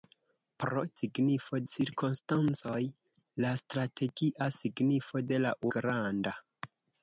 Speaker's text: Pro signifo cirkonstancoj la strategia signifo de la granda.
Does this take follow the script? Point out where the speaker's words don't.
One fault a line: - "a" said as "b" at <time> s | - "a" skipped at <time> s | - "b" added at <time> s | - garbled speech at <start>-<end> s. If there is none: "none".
none